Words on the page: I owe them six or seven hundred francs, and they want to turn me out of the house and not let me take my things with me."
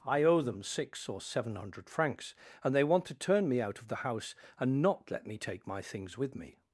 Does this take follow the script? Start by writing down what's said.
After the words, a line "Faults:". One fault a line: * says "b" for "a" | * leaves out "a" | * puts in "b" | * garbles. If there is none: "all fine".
I owe them six or seven hundred francs, and they want to turn me out of the house and not let me take my things with me."
Faults:
all fine